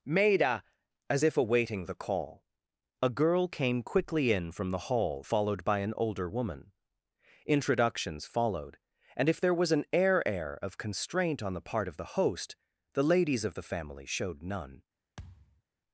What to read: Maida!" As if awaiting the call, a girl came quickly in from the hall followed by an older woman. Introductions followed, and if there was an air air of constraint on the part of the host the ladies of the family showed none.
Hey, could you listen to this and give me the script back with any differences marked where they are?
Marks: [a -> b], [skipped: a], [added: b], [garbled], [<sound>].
Maida!" As if awaiting the call, a girl came quickly in from the hall followed by an older woman. Introductions followed, and if there was an air air of constraint on the part of the host the ladies of the family showed none. [thud]